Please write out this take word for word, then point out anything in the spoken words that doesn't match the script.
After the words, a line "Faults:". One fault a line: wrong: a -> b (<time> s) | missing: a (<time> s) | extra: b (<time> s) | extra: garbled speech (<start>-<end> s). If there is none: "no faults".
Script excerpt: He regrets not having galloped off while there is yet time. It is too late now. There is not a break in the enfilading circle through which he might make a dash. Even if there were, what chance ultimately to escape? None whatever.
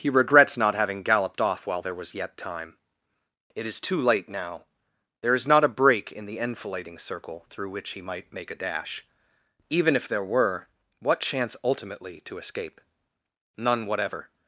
He regrets not having galloped off while there was yet time. It is too late now. There is not a break in the enfilading circle through which he might make a dash. Even if there were, what chance ultimately to escape? None whatever.
Faults:
wrong: is -> was (1.9 s)